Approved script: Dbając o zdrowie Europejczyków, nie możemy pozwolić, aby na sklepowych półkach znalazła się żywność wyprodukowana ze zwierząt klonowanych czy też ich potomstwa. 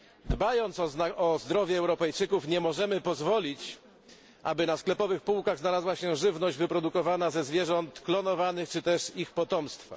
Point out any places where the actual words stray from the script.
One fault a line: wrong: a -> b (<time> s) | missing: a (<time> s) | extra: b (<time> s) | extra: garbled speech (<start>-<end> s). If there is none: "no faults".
no faults